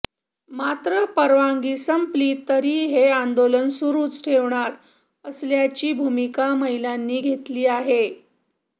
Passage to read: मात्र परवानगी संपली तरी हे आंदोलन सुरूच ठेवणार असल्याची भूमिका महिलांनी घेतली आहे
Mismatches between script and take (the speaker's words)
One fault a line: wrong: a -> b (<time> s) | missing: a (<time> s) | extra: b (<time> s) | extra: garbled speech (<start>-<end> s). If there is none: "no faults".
no faults